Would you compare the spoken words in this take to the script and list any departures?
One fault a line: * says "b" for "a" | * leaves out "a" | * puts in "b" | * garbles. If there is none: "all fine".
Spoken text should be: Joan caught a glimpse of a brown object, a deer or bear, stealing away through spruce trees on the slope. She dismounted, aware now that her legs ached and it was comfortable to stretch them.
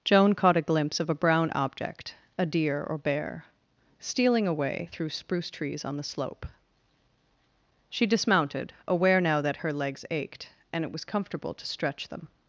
all fine